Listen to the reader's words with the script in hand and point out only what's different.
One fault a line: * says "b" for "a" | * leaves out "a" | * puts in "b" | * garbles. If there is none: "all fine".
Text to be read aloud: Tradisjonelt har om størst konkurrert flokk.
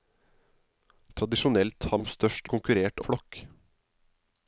all fine